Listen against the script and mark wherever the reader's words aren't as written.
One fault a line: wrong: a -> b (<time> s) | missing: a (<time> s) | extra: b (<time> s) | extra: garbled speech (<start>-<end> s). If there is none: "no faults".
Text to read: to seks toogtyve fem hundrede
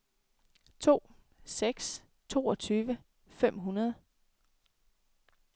no faults